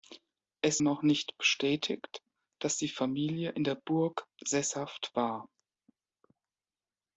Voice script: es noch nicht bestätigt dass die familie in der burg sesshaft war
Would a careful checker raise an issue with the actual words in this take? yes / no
no